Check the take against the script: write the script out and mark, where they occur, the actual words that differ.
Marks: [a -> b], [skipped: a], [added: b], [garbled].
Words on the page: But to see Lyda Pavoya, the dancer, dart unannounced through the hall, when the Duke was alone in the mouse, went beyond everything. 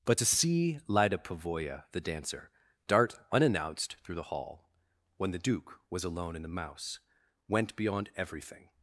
But to see Lyda Pavoya, the dancer, dart unannounced through the hall, when the Duke was alone in the mouse, went beyond everything.